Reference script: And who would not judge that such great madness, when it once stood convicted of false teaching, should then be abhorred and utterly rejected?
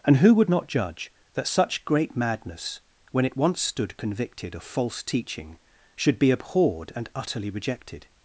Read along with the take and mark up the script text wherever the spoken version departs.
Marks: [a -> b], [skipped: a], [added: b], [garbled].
And who would not judge that such great madness, when it once stood convicted of false teaching, should [skipped: then] be abhorred and utterly rejected?